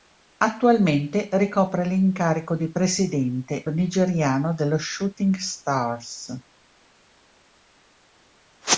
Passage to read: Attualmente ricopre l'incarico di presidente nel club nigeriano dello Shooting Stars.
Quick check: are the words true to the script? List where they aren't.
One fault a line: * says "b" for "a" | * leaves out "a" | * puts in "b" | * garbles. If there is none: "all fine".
* leaves out "nel club"